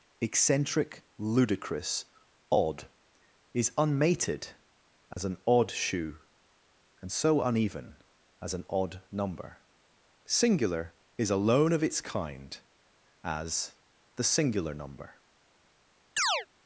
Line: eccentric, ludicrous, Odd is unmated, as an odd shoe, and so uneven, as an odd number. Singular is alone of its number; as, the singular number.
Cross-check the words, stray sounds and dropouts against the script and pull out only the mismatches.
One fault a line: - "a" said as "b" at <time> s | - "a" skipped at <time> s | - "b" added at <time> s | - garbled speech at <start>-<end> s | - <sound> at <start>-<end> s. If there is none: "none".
- dropout at 5.1-5.2 s
- "number" said as "kind" at 12.0 s
- chirp at 16.2-16.5 s